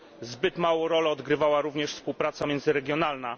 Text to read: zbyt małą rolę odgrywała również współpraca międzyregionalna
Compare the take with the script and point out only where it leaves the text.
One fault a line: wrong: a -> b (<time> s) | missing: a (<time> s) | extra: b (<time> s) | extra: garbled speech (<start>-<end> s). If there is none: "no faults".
no faults